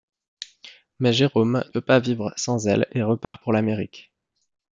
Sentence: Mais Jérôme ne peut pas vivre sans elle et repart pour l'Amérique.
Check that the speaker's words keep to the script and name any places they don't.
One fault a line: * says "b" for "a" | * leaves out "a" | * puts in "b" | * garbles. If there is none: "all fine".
* leaves out "ne"